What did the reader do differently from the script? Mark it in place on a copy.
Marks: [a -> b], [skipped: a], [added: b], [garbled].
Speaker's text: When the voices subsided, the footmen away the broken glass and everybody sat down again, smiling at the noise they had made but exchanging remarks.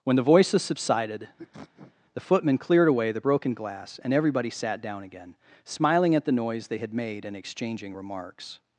When the voices subsided, the footmen [added: cleared] away the broken glass and everybody sat down again, smiling at the noise they had made [but -> and] exchanging remarks.